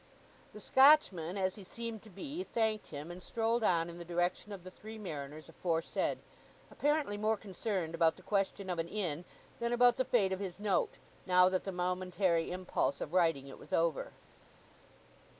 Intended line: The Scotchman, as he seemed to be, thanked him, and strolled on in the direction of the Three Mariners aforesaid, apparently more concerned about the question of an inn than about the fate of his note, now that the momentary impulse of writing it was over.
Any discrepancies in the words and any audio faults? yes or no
no